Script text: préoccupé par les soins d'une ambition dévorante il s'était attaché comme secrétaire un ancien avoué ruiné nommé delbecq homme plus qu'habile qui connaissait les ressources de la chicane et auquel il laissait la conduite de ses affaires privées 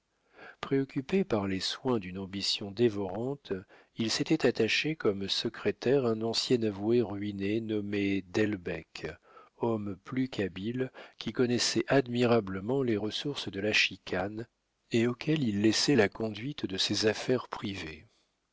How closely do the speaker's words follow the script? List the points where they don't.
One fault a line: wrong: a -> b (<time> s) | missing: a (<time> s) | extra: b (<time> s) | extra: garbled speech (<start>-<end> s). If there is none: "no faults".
extra: admirablement (11.9 s)